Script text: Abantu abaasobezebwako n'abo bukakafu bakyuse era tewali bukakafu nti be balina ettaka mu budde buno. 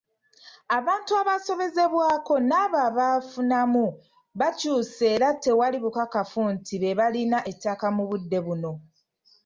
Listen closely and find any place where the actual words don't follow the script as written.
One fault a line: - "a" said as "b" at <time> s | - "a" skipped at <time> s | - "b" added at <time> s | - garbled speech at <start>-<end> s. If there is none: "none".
- "bukakafu" said as "abaafunamu" at 2.9 s